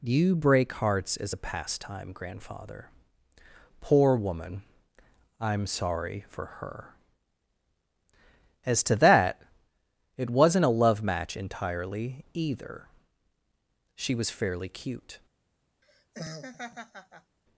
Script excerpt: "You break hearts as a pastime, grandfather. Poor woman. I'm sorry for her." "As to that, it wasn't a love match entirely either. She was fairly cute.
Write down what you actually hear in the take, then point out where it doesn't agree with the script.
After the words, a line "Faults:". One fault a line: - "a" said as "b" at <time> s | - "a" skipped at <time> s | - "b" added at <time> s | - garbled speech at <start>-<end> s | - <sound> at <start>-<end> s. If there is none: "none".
"You break hearts as a pastime, grandfather. Poor woman. I'm sorry for her." "As to that, it wasn't a love match entirely either. She was fairly cute.
Faults:
- laugh at 15.8-17.4 s